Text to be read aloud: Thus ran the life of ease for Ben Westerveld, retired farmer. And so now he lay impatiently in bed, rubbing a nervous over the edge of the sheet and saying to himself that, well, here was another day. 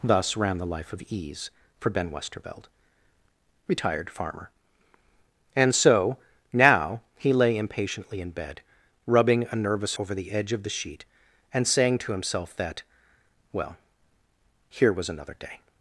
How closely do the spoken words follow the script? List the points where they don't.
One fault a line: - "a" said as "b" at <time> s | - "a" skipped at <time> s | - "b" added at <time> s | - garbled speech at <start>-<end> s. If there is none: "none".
none